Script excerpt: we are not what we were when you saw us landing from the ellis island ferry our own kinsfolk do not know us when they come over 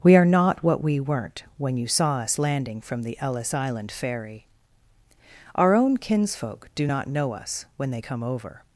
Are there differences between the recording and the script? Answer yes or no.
yes